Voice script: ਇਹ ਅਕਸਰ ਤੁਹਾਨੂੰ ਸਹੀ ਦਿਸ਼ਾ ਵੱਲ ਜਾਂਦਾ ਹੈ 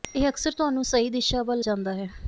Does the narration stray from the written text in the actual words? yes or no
no